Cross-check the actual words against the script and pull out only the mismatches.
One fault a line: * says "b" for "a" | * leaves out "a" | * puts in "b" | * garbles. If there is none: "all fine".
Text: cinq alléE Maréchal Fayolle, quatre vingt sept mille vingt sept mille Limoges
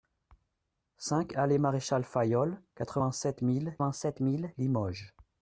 all fine